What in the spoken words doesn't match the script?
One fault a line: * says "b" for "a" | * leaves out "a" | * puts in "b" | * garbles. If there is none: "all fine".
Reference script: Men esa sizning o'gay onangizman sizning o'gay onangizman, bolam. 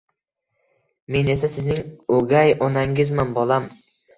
* leaves out "sizning o'gay onangizman"